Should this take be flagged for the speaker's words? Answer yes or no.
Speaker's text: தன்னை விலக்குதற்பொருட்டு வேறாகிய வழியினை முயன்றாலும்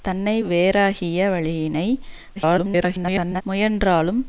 yes